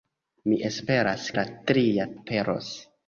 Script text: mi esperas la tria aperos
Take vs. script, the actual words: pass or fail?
pass